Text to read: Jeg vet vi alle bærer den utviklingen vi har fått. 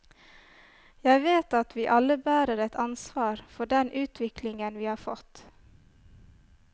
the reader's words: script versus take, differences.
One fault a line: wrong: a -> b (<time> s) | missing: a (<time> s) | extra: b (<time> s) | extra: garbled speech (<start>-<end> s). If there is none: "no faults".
extra: at (1.6 s)
extra: et ansvar for (2.6 s)